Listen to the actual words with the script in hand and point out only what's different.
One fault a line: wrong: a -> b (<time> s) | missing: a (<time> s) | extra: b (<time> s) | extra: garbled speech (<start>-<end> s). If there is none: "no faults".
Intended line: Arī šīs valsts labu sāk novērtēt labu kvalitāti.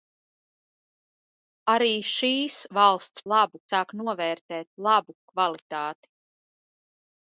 no faults